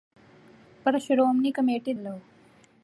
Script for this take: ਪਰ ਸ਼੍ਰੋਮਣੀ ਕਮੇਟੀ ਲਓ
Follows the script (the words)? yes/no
yes